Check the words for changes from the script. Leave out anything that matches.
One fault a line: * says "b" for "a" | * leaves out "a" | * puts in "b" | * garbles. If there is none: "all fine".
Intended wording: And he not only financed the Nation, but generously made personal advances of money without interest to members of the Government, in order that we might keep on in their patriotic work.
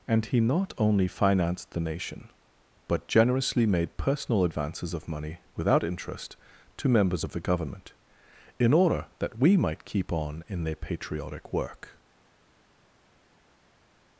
all fine